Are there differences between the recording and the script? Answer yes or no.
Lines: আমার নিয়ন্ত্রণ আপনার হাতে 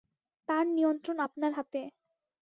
yes